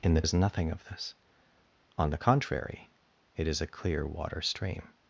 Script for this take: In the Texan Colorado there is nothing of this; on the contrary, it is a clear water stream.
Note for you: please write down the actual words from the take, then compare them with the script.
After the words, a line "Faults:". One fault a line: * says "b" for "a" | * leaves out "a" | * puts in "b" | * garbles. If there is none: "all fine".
In the Is nothing of this; on the contrary, it is a clear water stream.
Faults:
* leaves out "Texan Colorado there"